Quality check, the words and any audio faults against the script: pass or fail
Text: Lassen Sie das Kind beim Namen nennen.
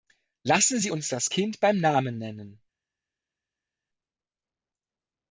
fail